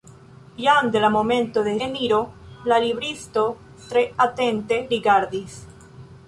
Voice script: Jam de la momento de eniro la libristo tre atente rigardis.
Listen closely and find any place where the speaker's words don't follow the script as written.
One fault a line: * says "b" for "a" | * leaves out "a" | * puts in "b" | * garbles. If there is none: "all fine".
all fine